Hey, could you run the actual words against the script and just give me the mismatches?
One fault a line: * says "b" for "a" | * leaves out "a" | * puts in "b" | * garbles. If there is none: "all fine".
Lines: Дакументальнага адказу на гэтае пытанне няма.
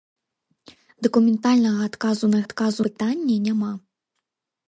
* says "адказу" for "гэтае"